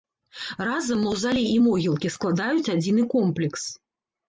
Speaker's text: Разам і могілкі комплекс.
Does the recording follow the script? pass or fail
fail